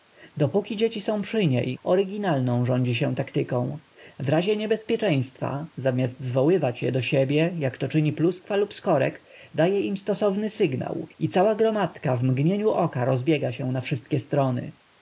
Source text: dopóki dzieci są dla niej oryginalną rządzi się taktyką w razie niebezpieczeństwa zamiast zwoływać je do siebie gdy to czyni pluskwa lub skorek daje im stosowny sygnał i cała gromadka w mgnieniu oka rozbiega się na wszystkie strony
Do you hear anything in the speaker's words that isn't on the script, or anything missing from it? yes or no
yes